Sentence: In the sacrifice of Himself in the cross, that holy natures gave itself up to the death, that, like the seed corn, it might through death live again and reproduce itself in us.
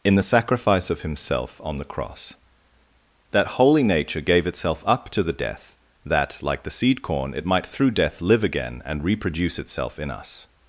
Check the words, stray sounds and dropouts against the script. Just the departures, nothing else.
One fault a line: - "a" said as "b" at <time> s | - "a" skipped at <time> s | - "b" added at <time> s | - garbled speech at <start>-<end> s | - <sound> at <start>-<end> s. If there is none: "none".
- "in" said as "on" at 1.6 s
- "natures" said as "nature" at 3.8 s